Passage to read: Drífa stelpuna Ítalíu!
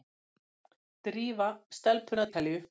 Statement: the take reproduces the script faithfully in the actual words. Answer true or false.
true